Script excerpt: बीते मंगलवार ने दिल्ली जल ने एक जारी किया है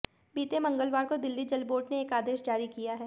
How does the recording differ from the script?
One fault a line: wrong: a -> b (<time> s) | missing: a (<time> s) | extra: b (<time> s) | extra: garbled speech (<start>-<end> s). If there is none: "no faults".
wrong: ने -> को (1.0 s)
extra: बोर्ड (1.6 s)
extra: आदेश (2.1 s)